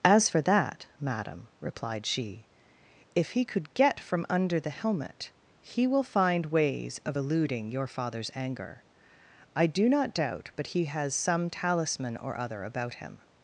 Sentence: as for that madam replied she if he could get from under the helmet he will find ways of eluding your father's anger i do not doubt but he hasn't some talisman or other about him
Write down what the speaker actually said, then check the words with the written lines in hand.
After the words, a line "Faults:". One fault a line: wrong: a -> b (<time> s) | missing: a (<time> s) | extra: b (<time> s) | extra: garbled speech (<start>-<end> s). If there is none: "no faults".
as for that madam replied she if he could get from under the helmet he will find ways of eluding your father's anger i do not doubt but he has some talisman or other about him
Faults:
wrong: hasn't -> has (10.9 s)